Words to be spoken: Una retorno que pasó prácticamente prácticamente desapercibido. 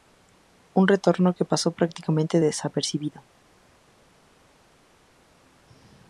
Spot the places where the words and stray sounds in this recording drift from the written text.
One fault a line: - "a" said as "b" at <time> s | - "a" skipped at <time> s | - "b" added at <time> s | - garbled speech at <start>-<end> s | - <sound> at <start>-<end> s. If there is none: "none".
- "Una" said as "Un" at 0.7 s
- "prácticamente" skipped at 2.4 s